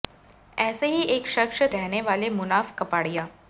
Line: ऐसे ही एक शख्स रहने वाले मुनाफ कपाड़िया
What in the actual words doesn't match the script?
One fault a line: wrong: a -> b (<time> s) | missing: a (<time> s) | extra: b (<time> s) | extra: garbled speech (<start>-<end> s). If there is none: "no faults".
no faults